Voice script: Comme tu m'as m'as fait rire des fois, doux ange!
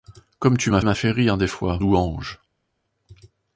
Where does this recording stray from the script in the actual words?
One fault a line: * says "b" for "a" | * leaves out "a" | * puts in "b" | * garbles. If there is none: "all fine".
all fine